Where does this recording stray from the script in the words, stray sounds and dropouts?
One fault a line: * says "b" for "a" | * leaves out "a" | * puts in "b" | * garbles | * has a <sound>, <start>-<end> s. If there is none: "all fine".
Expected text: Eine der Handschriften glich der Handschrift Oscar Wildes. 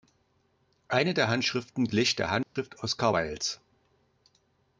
* has a dropout, 2.4-2.6 s